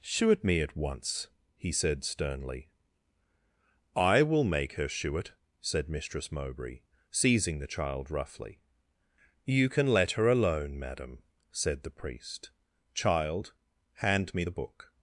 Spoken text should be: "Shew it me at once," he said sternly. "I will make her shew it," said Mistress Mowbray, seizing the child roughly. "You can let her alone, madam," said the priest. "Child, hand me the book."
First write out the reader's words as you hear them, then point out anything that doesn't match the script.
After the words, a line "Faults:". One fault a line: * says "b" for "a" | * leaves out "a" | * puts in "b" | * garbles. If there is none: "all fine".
"Shew it me at once," he said sternly. "I will make her shew it," said Mistress Mowbray, seizing the child roughly. "You can let her alone, madam," said the priest. "Child, hand me the book."
Faults:
all fine